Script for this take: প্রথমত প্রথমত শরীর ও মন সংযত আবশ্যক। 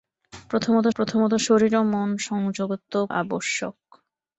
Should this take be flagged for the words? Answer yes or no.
no